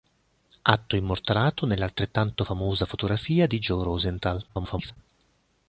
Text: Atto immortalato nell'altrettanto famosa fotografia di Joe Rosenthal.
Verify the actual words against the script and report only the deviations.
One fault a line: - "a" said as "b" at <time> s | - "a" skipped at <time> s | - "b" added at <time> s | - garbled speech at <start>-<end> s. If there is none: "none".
- garbled speech at 4.5-5.0 s